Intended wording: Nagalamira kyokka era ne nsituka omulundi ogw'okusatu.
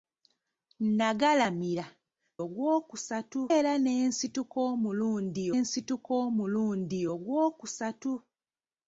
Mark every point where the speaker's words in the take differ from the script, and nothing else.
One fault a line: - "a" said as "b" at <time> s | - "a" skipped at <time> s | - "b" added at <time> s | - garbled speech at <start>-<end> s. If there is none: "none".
- "kyokka" said as "ogw'okusatu" at 2.4 s
- "nsituka omulundi" added at 5.6 s